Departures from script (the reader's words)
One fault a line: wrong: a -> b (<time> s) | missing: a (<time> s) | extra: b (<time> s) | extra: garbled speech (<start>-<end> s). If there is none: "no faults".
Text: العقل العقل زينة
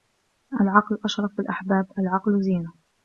extra: أشرف الأحباب (1.1 s)